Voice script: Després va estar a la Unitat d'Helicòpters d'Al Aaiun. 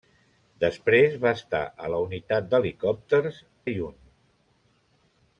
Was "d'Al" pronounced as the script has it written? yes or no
no